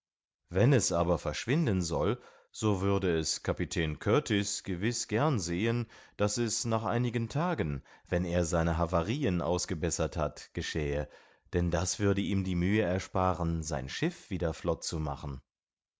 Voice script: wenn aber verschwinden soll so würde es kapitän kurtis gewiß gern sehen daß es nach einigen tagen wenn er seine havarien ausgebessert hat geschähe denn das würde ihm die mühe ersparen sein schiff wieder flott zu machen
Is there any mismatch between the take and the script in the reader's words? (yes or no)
yes